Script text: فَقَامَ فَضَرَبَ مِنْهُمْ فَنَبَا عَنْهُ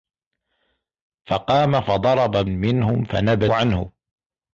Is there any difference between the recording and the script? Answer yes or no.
no